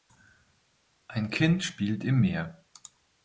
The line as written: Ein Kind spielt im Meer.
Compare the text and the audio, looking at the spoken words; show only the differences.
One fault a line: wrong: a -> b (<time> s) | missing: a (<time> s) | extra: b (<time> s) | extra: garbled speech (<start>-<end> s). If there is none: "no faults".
no faults